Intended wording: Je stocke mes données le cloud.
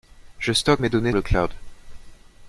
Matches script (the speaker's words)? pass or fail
pass